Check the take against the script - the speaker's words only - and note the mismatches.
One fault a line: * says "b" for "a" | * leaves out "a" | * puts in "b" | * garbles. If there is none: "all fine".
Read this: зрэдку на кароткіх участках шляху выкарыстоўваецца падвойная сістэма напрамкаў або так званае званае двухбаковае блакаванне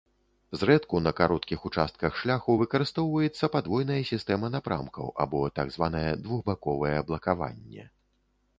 * leaves out "званае"